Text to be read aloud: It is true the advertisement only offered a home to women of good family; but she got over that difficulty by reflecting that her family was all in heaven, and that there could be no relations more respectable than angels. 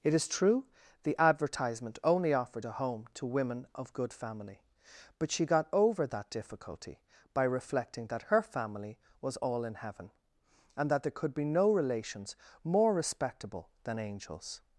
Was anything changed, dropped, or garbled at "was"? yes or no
no